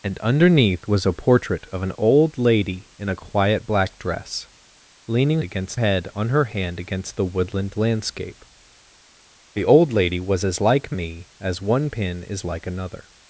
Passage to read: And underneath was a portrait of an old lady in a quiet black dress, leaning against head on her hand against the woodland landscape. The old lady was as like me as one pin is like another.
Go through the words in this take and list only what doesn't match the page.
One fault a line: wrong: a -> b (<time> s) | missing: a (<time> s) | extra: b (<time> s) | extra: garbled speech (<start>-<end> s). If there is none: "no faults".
no faults